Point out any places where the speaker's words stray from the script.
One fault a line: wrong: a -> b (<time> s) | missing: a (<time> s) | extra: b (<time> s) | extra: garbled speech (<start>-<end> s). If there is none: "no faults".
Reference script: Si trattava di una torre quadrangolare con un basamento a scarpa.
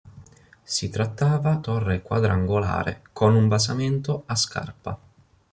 missing: di una (1.6 s)